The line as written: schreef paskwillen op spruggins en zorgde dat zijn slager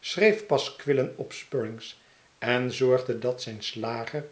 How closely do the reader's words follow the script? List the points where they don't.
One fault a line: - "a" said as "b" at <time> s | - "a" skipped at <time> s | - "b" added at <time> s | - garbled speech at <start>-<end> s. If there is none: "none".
none